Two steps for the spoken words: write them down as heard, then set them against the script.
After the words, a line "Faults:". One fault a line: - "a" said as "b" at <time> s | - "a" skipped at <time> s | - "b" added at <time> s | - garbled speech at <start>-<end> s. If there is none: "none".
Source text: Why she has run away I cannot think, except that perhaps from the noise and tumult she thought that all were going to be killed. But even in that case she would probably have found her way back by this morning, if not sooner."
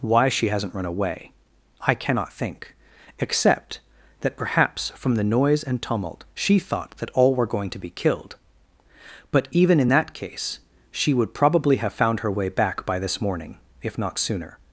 Why she hasn't run away I cannot think, except that perhaps from the noise and tumult she thought that all were going to be killed. But even in that case she would probably have found her way back by this morning, if not sooner."
Faults:
- "has" said as "hasn't" at 0.5 s